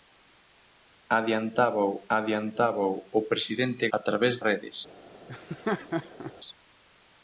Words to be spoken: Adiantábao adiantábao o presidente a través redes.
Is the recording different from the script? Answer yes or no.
no